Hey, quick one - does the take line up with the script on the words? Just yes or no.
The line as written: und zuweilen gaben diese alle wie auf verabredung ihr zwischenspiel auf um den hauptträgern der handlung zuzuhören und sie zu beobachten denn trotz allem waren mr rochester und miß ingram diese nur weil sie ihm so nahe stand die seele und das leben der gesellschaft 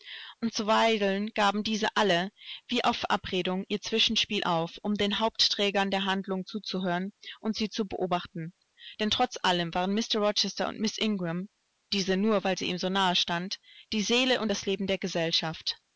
yes